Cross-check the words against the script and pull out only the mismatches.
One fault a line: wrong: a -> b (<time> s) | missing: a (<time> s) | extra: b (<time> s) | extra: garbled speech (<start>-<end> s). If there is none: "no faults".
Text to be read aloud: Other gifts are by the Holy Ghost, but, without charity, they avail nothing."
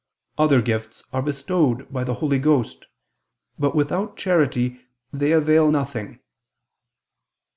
extra: bestowed (1.2 s)